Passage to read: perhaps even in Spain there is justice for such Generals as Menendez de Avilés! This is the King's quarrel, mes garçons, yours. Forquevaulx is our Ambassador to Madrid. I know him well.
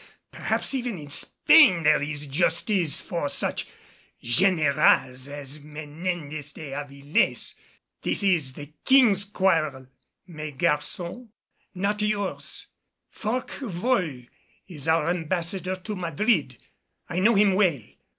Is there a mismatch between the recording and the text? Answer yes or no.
yes